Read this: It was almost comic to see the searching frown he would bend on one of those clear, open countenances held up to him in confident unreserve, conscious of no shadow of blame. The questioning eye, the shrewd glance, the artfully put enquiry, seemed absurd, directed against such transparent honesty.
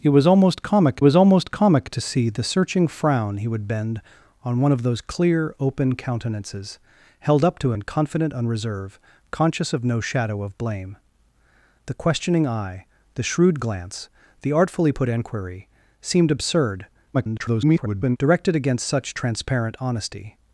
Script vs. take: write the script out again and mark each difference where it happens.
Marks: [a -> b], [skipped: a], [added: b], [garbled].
It was almost comic [added: was almost comic] to see the searching frown he would bend on one of those clear, open countenances held up to [skipped: him] in confident unreserve, conscious of no shadow of blame. The questioning eye, the shrewd glance, the artfully put enquiry, seemed absurd, [garbled] directed against such transparent honesty.